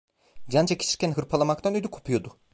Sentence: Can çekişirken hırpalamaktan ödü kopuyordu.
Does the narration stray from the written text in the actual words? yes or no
no